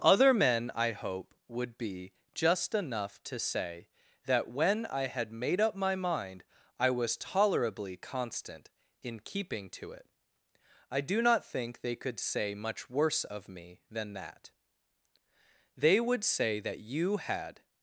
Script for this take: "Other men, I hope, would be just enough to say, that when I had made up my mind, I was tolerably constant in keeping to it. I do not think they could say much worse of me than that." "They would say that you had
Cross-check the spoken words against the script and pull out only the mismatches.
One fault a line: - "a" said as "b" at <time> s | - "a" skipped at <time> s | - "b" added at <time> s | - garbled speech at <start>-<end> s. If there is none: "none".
none